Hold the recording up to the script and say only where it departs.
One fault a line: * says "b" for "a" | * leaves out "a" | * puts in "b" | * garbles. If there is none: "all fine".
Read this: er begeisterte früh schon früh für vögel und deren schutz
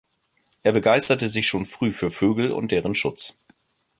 * says "sich" for "früh"